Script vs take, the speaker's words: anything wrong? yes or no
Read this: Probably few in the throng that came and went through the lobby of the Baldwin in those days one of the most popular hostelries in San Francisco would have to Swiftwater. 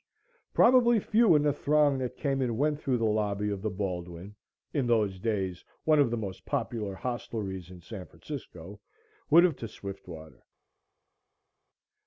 no